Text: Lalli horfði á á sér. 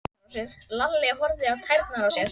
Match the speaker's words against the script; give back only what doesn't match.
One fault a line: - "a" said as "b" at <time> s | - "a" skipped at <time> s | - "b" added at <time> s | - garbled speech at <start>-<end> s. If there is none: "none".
- "tærnar" added at 1.7 s